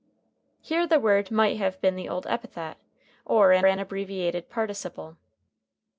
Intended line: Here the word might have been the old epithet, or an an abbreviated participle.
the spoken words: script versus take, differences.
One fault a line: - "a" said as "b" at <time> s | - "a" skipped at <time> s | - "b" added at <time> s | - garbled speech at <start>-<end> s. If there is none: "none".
none